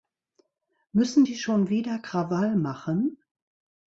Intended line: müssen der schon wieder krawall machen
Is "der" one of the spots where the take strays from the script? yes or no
yes